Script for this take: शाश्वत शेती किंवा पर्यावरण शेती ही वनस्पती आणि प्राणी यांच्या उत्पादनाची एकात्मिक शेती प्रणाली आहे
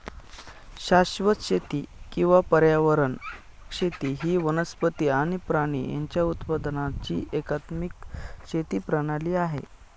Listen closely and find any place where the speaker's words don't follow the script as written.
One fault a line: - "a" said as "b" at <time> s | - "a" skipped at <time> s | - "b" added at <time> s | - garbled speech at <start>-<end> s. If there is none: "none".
none